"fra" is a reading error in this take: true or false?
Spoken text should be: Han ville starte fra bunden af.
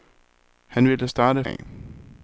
true